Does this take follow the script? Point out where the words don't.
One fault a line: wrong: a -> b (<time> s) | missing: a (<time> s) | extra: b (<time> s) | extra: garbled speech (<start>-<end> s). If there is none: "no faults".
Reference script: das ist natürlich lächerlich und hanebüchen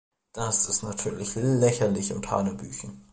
no faults